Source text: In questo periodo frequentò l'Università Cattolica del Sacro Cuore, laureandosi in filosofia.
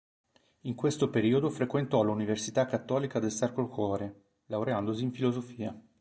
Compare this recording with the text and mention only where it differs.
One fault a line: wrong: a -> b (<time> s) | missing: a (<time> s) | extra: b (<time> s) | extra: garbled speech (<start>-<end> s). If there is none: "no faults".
no faults